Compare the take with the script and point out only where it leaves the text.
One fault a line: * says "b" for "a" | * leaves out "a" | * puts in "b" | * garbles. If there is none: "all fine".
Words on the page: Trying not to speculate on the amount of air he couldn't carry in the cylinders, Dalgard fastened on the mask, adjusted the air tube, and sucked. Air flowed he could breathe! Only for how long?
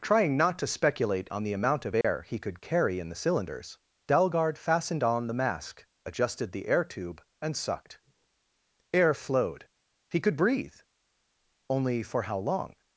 * says "could" for "couldn't"